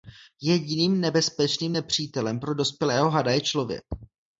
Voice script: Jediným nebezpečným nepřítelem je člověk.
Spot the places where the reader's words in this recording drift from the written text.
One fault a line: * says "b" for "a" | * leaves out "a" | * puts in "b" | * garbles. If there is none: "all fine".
* puts in "pro dospělého hada"